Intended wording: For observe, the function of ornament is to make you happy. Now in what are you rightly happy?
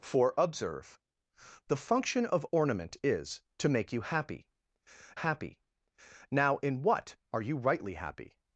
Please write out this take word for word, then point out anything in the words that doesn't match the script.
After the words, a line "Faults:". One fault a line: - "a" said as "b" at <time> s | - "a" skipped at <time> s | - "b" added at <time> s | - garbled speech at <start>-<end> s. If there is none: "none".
For observe, the function of ornament is to make you happy happy. Now in what are you rightly happy?
Faults:
- "happy" added at 5.1 s